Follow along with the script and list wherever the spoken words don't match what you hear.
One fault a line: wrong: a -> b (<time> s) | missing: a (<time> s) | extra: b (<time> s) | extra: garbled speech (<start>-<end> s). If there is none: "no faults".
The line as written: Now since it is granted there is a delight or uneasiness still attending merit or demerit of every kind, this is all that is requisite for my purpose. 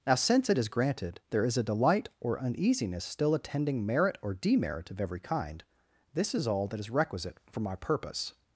no faults